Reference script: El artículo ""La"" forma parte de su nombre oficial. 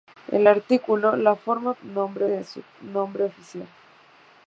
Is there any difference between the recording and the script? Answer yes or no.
yes